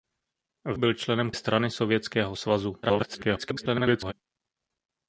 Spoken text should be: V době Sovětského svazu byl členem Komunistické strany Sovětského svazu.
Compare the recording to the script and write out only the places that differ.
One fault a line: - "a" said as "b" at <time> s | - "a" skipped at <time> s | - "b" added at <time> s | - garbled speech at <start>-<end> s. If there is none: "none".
- "době Sovětského svazu" skipped at 0.8 s
- "Komunistické" skipped at 1.3 s
- garbled speech at 2.8-4.1 s